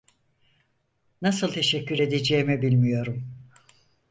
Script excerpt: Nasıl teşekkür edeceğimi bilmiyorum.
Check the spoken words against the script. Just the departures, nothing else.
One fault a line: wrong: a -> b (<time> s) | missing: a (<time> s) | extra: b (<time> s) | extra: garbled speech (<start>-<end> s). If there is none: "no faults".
no faults